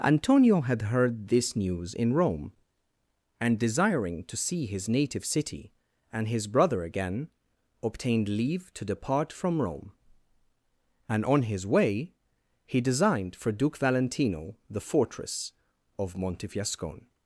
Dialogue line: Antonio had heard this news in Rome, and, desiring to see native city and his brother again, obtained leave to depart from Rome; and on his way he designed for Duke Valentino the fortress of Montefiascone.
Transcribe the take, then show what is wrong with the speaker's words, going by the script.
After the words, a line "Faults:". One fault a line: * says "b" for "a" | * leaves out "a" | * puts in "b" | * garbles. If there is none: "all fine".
Antonio had heard this news in Rome, and, desiring to see his native city and his brother again, obtained leave to depart from Rome; and on his way he designed for Duke Valentino the fortress of Montefiascone.
Faults:
* puts in "his"